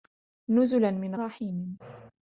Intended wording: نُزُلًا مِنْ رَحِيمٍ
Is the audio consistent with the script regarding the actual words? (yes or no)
yes